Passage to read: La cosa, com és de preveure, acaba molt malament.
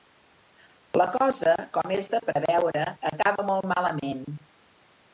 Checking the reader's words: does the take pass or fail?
pass